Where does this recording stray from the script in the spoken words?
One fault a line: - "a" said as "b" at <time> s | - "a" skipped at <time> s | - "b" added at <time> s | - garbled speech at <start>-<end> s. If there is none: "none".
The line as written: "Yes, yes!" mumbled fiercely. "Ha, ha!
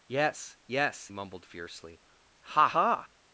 none